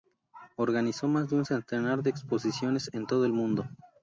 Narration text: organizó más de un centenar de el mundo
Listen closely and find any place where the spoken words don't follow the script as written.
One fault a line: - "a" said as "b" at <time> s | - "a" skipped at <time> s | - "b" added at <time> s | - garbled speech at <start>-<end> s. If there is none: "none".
- "exposiciones en todo" added at 2.1 s